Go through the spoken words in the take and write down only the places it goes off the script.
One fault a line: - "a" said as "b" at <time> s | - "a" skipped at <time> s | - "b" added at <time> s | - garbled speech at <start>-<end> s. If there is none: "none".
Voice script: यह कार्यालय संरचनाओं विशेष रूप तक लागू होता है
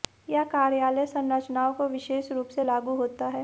- "को" added at 1.7 s
- "तक" said as "से" at 2.5 s